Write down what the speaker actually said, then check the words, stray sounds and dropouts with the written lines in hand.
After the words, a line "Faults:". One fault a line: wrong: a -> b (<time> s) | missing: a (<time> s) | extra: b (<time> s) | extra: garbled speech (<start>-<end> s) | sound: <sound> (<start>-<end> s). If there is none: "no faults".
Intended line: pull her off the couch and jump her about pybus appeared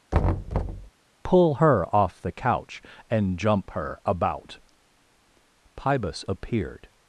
pull her off the couch and jump her about pybus appeared
Faults:
sound: thud (0.1-0.9 s)